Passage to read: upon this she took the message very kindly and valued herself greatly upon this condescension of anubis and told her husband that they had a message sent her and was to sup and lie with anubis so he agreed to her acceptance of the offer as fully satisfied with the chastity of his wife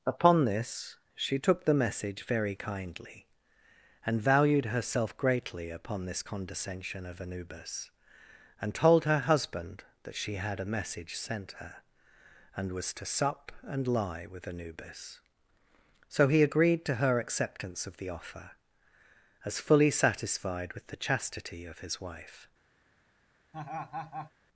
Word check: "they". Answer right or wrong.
wrong